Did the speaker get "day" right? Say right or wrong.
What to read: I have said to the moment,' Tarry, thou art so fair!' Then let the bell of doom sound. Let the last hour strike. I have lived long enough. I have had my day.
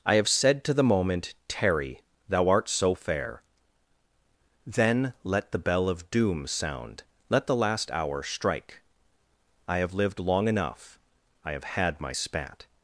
wrong